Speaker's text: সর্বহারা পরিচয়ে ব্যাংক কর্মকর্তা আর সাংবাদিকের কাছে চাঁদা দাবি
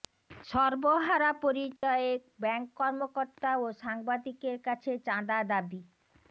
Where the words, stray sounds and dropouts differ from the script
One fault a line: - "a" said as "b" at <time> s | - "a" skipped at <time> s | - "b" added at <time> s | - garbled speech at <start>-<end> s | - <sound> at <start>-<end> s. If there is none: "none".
- dropout at 1.8-1.8 s
- "আর" said as "ও" at 3.6 s